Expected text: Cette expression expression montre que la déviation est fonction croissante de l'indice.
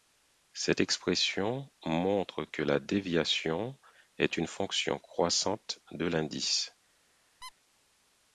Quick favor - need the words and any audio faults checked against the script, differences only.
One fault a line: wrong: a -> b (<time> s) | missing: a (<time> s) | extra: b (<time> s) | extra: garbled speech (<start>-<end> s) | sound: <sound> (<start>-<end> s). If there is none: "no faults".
missing: expression (1.7 s)
extra: une (4.3 s)
sound: squeak (7.4-7.5 s)